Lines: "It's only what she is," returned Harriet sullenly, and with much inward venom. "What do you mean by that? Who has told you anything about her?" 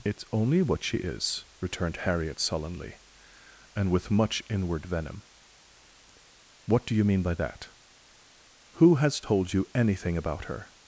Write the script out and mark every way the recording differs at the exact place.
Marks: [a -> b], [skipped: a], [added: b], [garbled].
"It's only what she is," returned Harriet sullenly, and with much inward venom. "What do you mean by that? Who has told you anything about her?"